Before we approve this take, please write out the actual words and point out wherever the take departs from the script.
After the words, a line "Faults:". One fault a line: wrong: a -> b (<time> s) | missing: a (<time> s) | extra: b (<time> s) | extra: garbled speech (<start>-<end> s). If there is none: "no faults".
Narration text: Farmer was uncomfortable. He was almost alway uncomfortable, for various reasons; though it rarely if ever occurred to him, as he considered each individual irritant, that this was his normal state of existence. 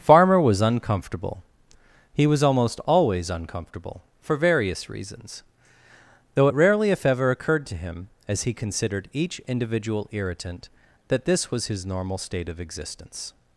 Farmer was uncomfortable. He was almost always uncomfortable, for various reasons; though it rarely if ever occurred to him, as he considered each individual irritant, that this was his normal state of existence.
Faults:
wrong: alway -> always (2.9 s)